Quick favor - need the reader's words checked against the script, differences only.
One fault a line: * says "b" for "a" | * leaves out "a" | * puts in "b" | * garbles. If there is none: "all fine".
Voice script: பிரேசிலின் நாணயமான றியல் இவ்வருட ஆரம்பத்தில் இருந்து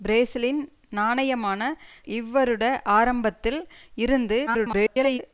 * leaves out "றியல்"
* garbles